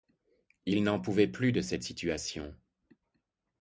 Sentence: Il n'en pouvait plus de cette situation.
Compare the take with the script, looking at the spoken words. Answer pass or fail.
pass